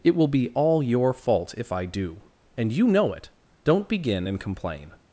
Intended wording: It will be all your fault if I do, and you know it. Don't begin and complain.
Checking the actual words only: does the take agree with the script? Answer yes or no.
yes